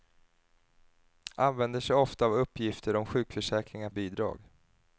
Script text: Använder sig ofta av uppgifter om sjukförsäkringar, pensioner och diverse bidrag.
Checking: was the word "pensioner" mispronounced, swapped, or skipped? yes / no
yes